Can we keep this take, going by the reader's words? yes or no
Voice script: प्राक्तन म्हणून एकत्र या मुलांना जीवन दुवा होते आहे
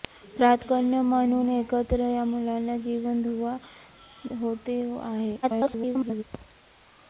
no